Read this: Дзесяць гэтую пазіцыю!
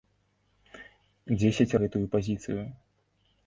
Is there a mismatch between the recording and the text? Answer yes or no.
no